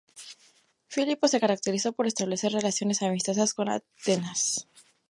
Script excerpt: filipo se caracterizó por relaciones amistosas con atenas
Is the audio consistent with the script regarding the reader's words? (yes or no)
no